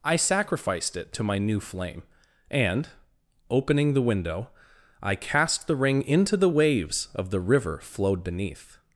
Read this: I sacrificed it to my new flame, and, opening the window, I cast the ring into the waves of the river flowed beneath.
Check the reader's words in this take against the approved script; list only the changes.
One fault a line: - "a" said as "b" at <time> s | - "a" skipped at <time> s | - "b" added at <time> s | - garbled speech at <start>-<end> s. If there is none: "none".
none